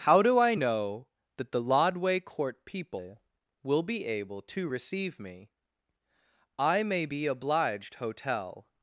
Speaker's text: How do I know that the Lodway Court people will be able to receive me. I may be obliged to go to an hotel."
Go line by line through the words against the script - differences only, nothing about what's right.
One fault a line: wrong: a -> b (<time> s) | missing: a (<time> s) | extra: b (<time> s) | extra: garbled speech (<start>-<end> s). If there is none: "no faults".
missing: to go to an (7.9 s)